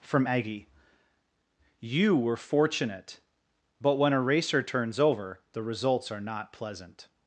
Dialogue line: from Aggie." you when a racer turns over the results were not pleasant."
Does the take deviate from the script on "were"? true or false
true